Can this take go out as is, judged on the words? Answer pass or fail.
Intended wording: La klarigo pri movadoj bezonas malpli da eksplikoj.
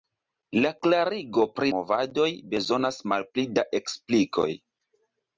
pass